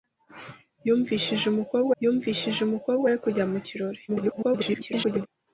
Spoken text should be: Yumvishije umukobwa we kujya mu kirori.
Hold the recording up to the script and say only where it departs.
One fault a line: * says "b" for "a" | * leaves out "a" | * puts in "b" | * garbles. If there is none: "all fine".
* puts in "yumvishije umukobwa"
* garbles